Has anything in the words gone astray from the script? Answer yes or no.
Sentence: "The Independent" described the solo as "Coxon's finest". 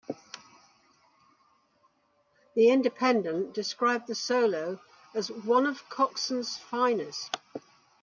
yes